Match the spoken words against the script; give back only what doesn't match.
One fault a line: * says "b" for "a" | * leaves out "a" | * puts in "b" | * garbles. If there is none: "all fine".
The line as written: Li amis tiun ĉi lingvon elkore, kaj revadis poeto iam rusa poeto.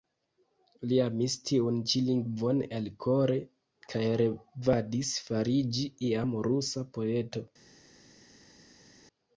* says "fariĝi" for "poeto"